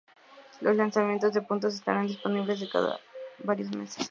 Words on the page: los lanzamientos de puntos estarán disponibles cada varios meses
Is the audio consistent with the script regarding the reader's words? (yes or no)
yes